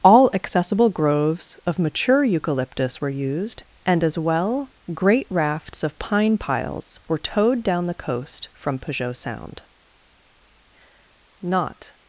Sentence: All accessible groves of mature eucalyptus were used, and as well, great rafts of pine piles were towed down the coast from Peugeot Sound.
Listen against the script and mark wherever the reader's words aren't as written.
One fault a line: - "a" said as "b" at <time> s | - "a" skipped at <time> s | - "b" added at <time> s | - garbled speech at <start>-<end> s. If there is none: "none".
- "Not" added at 11.4 s